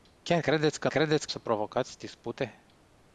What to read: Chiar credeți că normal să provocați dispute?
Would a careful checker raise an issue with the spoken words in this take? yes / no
yes